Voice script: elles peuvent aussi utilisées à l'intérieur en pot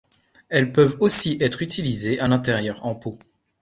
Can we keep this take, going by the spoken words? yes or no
no